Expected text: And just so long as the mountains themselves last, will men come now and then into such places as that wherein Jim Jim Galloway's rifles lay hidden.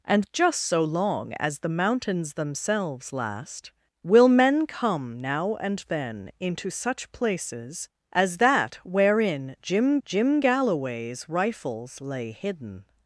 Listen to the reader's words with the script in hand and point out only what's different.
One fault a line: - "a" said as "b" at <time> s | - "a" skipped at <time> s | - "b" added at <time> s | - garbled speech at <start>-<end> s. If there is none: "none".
none